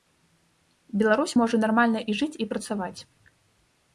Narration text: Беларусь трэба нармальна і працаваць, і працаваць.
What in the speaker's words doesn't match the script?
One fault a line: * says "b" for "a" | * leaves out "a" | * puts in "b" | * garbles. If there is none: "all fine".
* says "можа" for "трэба"
* says "жыць" for "працаваць"